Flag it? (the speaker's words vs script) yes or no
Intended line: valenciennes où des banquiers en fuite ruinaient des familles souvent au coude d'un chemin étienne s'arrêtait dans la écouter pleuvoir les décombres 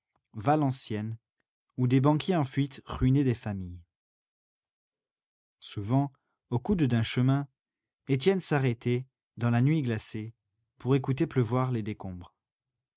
yes